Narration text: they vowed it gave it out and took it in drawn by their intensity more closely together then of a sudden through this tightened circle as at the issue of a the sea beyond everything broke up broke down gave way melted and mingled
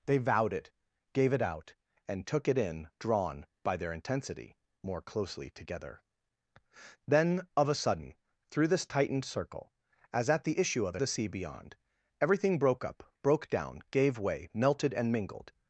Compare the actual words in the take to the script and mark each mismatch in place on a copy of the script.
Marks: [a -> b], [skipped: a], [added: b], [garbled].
they vowed it gave it out and took it in drawn by their intensity more closely together then of a sudden through this tightened circle as at the issue of a the sea beyond everything broke up broke down gave way melted and mingled